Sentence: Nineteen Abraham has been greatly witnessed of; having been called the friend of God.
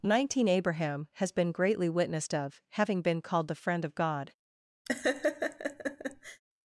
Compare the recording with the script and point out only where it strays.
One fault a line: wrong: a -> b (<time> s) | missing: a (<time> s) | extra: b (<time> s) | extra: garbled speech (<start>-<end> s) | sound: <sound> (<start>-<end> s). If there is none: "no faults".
sound: laugh (4.9-6.4 s)